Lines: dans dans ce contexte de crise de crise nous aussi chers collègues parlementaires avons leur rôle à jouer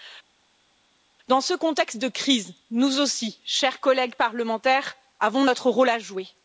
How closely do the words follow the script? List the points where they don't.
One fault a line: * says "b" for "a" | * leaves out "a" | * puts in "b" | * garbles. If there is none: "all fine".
* leaves out "dans"
* leaves out "de crise"
* says "notre" for "leur"